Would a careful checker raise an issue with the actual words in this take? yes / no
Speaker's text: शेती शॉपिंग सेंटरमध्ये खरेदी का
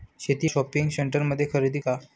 no